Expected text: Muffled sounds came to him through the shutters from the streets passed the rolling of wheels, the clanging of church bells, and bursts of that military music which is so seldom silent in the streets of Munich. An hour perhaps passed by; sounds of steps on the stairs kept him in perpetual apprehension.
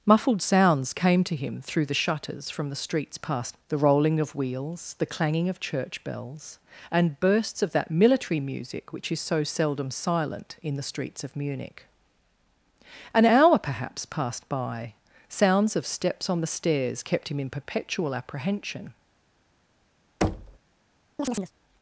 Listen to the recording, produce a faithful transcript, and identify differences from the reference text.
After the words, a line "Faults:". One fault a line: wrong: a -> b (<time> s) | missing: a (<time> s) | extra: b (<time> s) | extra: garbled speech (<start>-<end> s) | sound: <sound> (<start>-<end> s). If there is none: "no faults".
Muffled sounds came to him through the shutters from the streets passed the rolling of wheels, the clanging of church bells, and bursts of that military music which is so seldom silent in the streets of Munich. An hour perhaps passed by; sounds of steps on the stairs kept him in perpetual apprehension.
Faults:
sound: thud (20.2-20.6 s)
sound: chirp (21.2-21.5 s)